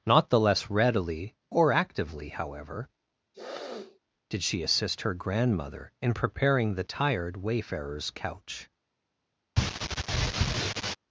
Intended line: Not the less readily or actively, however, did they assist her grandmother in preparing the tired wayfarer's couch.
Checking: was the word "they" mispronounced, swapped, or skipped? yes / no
yes